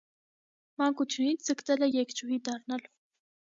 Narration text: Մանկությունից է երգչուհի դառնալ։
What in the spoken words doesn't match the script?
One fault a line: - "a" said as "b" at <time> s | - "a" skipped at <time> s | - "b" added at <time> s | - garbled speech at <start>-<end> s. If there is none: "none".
- "ձգտել" added at 1.5 s